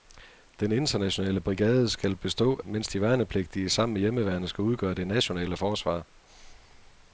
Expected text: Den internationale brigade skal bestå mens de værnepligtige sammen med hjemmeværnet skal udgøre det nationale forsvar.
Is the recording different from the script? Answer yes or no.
no